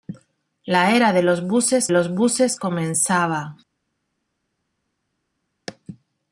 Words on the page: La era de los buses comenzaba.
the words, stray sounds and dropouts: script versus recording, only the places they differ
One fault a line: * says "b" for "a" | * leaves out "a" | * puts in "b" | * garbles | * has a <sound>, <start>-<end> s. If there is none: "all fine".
* puts in "los buses"